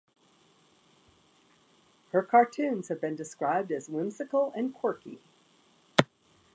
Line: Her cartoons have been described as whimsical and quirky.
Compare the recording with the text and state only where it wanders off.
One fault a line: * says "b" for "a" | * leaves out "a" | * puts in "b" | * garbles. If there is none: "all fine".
all fine